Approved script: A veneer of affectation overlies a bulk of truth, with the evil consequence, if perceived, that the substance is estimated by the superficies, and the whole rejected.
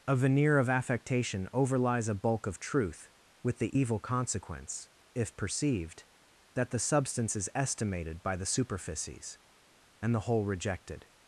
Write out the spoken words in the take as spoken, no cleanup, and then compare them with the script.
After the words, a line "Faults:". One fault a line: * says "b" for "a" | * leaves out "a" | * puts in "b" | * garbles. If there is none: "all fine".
A veneer of affectation overlies a bulk of truth, with the evil consequence, if perceived, that the substance is estimated by the superficies, and the whole rejected.
Faults:
all fine